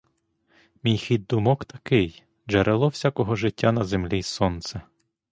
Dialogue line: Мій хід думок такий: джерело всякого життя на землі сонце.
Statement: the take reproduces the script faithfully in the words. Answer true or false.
true